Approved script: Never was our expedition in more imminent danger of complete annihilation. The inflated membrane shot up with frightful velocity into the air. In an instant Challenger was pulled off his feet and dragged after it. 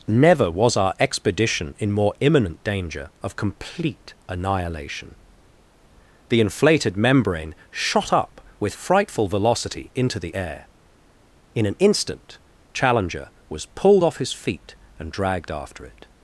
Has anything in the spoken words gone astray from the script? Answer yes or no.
no